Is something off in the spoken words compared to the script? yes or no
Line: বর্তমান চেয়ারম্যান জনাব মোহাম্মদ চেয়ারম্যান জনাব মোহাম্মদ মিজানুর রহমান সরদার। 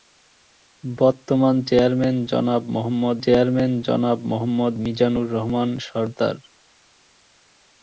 no